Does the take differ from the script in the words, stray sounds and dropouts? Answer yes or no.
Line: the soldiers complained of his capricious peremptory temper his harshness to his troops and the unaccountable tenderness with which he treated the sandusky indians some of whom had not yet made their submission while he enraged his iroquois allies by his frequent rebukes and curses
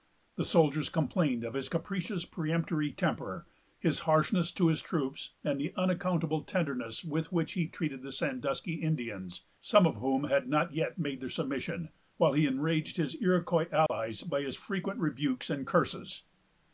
yes